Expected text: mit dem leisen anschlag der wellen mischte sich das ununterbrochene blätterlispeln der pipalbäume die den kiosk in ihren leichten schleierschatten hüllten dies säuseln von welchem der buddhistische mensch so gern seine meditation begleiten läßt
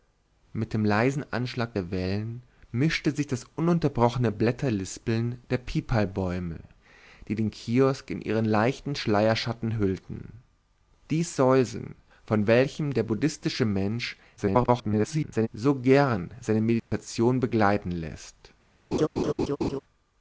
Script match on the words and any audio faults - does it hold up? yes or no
no